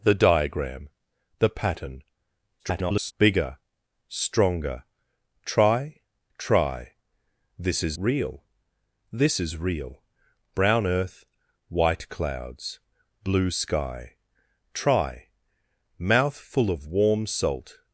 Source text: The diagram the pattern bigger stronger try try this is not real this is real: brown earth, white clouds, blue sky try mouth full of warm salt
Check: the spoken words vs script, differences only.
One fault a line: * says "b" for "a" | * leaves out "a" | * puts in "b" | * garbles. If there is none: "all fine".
* garbles
* leaves out "not"